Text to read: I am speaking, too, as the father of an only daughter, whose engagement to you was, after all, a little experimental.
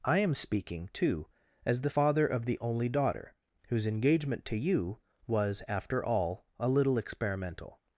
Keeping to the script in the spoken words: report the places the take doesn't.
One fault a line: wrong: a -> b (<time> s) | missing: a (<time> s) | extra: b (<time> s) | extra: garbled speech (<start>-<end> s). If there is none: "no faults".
wrong: an -> the (2.4 s)